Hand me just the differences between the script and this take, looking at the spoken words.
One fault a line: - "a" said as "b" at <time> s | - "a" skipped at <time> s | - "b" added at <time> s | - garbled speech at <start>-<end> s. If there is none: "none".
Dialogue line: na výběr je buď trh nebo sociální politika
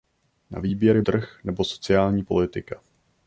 - "buď" skipped at 1.0 s